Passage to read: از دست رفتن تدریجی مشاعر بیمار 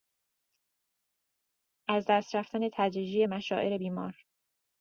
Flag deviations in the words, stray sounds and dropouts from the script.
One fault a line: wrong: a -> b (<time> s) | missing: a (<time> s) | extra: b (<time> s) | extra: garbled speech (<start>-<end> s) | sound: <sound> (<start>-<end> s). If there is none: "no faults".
no faults